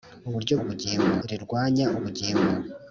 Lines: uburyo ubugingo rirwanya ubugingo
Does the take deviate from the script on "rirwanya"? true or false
false